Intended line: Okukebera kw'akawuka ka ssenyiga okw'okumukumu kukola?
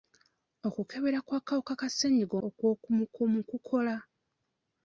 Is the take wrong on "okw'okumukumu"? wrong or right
right